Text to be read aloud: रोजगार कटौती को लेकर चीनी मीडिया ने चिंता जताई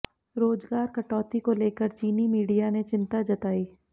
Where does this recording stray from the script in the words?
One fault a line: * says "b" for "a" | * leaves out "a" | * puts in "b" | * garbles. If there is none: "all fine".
all fine